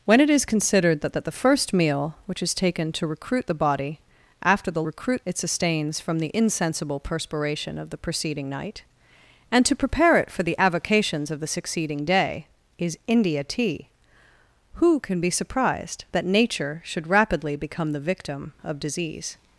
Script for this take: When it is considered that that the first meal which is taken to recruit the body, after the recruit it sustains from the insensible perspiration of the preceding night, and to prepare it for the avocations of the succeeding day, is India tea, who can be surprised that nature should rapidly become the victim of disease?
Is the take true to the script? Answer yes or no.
yes